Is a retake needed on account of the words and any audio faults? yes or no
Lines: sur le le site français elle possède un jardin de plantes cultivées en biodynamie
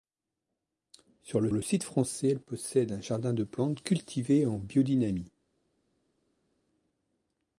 no